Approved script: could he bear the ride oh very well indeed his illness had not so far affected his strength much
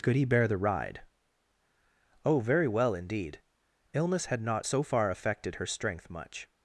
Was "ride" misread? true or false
false